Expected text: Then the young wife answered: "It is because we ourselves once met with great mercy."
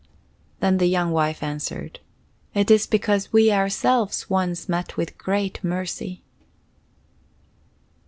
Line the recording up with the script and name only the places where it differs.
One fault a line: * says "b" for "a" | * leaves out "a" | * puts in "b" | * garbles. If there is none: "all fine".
all fine